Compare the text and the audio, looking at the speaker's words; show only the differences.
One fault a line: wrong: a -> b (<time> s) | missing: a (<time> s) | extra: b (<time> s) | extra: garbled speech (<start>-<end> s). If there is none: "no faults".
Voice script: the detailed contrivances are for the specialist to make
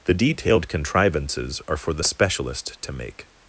no faults